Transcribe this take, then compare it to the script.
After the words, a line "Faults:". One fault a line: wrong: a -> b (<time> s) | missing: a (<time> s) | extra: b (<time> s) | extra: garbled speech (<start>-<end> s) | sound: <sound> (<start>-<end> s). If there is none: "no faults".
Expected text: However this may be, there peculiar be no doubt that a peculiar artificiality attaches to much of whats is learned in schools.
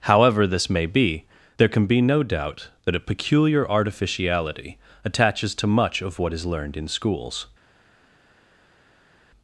However this may be, there can be no doubt that a peculiar artificiality attaches to much of what is learned in schools.
Faults:
wrong: peculiar -> can (1.7 s)
wrong: whats -> what (6.2 s)